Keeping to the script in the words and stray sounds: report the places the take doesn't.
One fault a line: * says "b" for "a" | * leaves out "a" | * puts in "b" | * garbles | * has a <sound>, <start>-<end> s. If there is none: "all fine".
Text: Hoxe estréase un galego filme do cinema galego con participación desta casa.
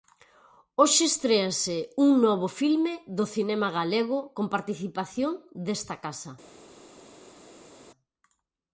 * says "novo" for "galego"